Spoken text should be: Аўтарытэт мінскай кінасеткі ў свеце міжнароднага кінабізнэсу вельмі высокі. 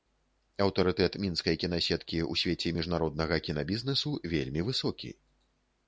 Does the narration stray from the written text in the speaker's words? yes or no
no